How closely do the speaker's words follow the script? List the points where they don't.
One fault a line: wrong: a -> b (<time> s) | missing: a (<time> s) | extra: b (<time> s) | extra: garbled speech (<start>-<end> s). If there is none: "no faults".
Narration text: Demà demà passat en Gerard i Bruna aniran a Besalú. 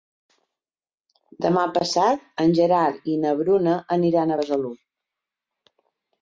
missing: demà (1.6 s)
extra: na (3.3 s)